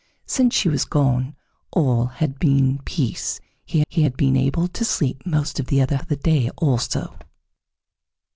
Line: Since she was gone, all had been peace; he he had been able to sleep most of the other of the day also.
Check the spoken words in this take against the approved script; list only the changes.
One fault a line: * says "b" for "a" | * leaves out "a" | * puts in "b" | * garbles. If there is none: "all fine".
all fine